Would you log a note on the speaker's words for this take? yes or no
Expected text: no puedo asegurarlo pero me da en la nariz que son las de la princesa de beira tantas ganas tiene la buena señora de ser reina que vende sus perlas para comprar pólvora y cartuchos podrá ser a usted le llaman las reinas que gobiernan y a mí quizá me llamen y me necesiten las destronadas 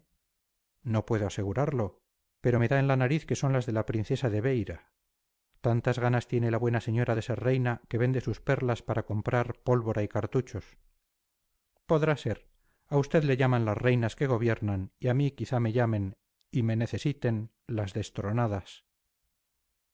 no